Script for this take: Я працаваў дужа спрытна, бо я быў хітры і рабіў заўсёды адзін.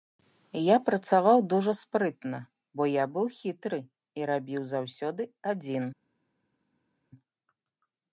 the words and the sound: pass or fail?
pass